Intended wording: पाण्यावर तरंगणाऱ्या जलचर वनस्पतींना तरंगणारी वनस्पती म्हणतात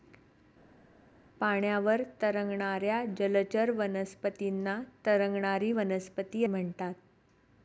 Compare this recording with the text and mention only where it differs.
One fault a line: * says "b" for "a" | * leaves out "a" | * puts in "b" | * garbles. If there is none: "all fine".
all fine